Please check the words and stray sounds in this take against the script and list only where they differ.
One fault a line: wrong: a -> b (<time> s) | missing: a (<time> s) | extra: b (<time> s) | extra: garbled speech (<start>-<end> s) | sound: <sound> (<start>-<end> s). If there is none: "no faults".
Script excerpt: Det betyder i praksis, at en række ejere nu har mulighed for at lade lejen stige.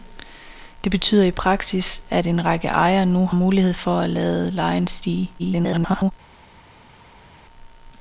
missing: har (3.3 s)
extra: garbled speech (5.4-6.1 s)